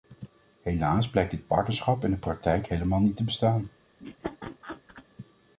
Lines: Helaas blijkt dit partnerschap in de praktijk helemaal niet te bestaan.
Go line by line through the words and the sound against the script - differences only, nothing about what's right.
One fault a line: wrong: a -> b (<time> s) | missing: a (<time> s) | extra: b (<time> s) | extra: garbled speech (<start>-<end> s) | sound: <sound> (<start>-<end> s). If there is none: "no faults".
sound: laugh (4.0-5.1 s)